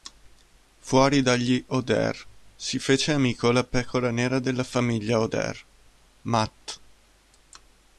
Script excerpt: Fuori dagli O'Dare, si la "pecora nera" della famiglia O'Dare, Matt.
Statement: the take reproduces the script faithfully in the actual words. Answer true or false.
false